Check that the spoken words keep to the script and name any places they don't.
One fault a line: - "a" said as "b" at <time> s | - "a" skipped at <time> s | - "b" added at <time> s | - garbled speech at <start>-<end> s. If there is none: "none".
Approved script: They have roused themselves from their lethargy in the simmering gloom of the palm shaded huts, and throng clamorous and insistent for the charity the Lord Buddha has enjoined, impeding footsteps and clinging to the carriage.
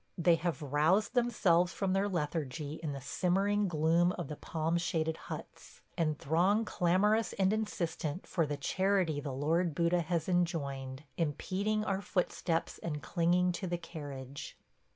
- "our" added at 11.8 s